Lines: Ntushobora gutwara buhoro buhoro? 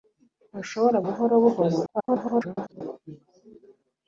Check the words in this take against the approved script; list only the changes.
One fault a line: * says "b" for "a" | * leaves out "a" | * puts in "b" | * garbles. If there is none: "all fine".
* leaves out "gutwara"
* garbles